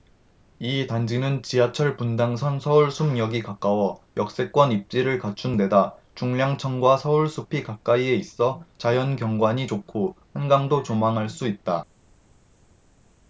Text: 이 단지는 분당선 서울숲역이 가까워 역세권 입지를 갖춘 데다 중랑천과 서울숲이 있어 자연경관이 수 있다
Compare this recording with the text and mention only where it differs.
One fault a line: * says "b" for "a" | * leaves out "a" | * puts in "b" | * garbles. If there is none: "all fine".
* puts in "지하철"
* puts in "가까이에"
* puts in "좋고 한강도 조망할"